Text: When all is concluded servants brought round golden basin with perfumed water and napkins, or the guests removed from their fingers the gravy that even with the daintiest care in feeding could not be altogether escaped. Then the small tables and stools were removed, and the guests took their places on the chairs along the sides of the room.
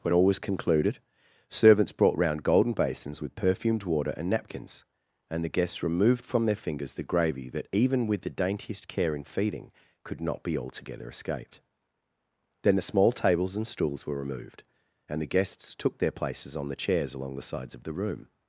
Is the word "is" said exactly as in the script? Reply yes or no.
no